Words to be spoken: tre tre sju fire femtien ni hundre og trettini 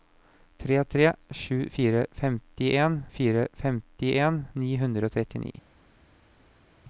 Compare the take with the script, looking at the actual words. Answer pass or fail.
fail